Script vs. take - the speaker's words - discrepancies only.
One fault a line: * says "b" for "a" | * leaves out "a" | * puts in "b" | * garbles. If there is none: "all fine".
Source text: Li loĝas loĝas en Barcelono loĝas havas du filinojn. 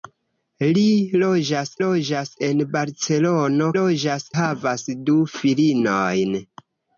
all fine